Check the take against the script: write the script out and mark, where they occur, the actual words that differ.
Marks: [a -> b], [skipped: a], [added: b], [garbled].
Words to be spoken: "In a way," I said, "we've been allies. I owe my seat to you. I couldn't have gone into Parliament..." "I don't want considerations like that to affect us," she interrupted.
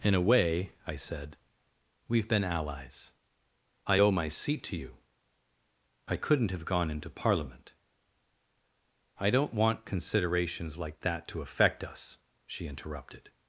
"In a way," I said, "we've been allies. I owe my seat to you. I couldn't have gone into Parliament..." "I don't want considerations like that to affect us," she interrupted.